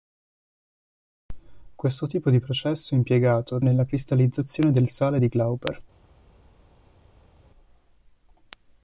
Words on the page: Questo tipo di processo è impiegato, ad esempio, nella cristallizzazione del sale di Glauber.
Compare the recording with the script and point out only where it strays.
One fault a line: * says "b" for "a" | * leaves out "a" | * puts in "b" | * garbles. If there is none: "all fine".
* leaves out "esempio"